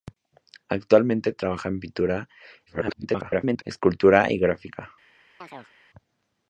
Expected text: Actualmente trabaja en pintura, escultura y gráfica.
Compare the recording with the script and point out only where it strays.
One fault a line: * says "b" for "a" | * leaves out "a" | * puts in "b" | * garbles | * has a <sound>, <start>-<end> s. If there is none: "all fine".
* garbles
* has a chirp, 5.4-5.7 s